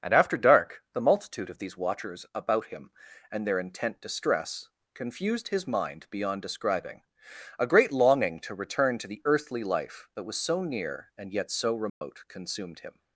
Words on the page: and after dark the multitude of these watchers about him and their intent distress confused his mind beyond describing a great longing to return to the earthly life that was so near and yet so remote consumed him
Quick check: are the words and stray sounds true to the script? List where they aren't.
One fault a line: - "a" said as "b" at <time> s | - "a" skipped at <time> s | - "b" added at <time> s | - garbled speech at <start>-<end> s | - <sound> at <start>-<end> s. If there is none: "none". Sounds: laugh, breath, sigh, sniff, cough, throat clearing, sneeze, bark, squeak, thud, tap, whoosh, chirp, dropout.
- dropout at 11.9-12.0 s